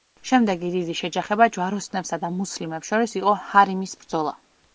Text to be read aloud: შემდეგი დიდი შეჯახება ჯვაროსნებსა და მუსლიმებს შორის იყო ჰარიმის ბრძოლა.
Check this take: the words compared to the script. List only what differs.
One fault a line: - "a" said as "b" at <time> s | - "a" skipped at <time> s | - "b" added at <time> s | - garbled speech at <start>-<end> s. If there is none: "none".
none